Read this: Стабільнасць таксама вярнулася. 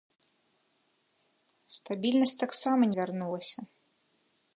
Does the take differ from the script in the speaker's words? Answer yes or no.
no